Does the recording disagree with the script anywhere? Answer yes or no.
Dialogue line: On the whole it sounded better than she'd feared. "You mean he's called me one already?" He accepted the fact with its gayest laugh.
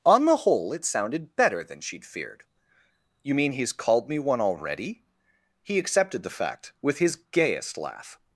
yes